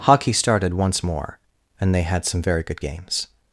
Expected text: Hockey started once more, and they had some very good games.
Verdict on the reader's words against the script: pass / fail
pass